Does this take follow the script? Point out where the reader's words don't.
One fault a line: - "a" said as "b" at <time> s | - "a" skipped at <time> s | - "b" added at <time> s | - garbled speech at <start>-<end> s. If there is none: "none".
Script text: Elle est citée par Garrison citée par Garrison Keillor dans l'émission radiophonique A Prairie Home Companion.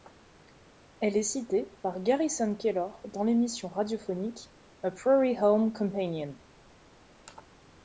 - "citée par Garrison" skipped at 2.5 s